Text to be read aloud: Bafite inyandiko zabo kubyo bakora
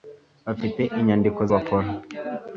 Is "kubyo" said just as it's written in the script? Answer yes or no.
no